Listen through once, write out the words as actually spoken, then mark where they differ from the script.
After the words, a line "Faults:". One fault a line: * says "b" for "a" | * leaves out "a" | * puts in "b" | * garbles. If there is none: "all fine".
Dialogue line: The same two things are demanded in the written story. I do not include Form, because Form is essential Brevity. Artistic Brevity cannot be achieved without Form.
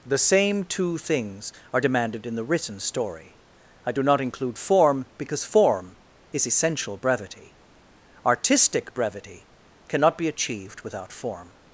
The same two things are demanded in the written story. I do not include Form, because Form is essential Brevity. Artistic Brevity cannot be achieved without Form.
Faults:
all fine